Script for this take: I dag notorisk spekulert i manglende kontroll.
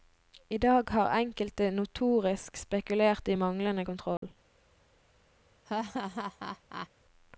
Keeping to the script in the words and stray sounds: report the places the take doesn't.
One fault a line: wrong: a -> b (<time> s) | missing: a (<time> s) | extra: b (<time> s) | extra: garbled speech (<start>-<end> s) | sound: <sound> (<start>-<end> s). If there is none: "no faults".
extra: har enkelte (0.9 s)
sound: dropout (4.2-4.2 s)
sound: laugh (5.7-6.9 s)